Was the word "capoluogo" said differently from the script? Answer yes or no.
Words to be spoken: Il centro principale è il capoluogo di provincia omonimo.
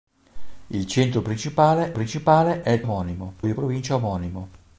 yes